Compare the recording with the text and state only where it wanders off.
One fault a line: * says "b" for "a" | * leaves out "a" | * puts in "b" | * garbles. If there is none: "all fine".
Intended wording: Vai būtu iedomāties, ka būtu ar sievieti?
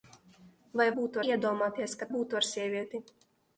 all fine